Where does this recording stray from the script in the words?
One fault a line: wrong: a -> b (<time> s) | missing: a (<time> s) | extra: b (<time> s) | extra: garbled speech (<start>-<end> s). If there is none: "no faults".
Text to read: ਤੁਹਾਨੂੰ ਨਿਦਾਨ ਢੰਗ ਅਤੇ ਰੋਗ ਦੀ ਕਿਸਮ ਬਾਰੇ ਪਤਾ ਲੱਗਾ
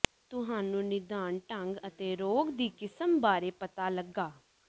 no faults